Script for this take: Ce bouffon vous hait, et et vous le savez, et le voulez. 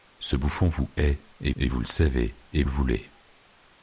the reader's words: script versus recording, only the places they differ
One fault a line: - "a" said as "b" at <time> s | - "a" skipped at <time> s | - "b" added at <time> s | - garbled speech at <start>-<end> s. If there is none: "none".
none